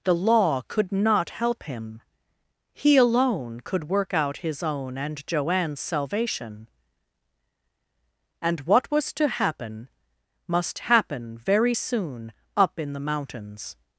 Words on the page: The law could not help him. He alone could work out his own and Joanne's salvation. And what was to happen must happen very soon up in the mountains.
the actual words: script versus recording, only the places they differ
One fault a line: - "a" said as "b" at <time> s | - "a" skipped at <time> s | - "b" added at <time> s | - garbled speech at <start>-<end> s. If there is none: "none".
none